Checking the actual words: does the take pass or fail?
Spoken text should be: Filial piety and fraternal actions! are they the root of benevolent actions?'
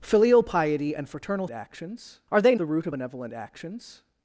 pass